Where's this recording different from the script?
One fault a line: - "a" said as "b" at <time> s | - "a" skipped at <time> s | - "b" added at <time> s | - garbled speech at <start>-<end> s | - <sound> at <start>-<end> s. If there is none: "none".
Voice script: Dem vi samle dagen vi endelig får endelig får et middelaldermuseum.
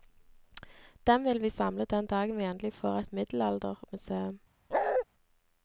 - "vil" added at 1.2 s
- "den" added at 1.9 s
- "endelig får" skipped at 3.0 s
- bark at 4.7-5.0 s